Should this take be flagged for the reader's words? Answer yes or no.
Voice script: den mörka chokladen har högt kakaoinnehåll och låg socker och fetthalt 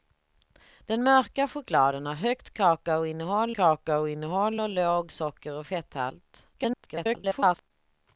yes